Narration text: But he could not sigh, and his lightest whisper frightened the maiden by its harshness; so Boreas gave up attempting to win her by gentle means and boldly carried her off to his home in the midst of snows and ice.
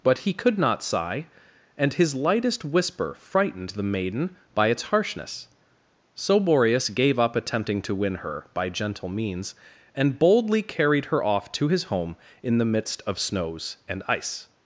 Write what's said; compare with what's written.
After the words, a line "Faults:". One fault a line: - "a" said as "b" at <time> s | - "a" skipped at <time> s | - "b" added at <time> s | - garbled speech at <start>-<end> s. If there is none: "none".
But he could not sigh, and his lightest whisper frightened the maiden by its harshness; so Boreas gave up attempting to win her by gentle means and boldly carried her off to his home in the midst of snows and ice.
Faults:
none